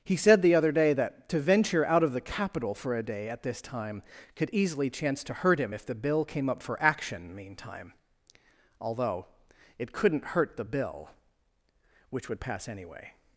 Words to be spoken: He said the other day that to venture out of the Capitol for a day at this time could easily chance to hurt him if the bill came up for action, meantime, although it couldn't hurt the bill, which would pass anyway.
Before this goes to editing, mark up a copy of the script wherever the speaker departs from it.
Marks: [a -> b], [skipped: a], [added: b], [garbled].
He said the other day that to venture out of the Capitol for a day at this time could easily chance to hurt him if the bill came up for action, meantime, although it couldn't hurt the bill, which would pass anyway.